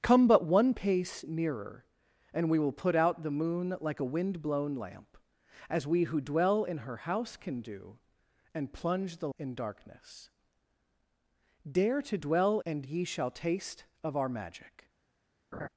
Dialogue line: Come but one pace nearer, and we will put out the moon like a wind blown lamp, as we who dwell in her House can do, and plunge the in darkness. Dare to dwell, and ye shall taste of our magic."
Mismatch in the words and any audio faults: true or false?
true